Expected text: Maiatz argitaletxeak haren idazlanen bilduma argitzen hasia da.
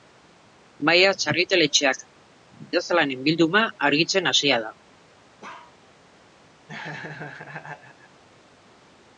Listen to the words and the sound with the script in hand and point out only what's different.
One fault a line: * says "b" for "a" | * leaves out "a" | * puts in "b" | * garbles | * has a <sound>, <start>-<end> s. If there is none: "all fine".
* leaves out "haren"
* has a bark, 5.4-5.8 s
* has a laugh, 6.7-8.2 s